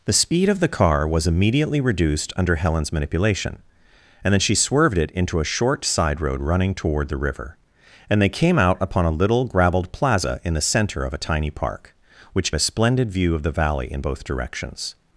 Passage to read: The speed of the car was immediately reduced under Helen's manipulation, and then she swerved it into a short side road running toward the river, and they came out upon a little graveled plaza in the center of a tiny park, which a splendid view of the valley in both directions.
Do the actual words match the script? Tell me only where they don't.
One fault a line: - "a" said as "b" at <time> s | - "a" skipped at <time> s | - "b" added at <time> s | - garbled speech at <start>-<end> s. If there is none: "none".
none